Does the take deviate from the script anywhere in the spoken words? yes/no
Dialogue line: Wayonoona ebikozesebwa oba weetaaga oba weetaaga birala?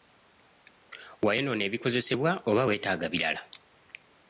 yes